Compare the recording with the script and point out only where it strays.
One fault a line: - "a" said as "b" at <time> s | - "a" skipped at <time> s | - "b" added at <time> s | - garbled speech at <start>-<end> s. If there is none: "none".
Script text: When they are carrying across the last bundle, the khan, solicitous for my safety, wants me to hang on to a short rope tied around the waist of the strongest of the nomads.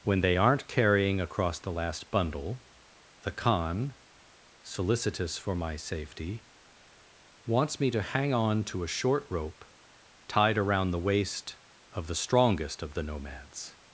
- "are" said as "aren't" at 0.3 s